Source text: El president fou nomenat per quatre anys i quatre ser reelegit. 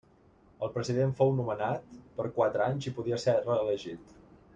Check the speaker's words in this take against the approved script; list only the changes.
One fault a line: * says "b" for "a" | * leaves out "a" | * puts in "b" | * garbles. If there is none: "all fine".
* says "podia" for "quatre"